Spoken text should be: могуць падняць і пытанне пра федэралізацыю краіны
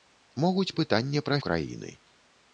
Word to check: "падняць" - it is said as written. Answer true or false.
false